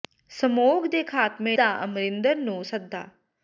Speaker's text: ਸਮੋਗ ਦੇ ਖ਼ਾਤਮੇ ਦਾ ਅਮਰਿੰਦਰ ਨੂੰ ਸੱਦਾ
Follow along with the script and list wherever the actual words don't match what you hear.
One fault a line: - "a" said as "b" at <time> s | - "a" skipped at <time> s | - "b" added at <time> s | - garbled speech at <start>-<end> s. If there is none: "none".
none